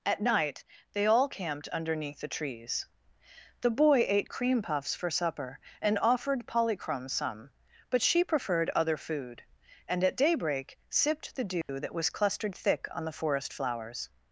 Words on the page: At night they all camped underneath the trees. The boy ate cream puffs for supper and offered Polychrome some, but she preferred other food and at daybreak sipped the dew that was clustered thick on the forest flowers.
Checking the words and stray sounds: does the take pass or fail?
fail